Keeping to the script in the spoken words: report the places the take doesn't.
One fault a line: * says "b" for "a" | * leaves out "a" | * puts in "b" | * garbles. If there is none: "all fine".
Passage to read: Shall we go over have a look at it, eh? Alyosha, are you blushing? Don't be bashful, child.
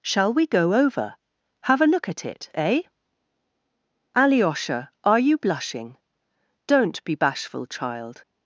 all fine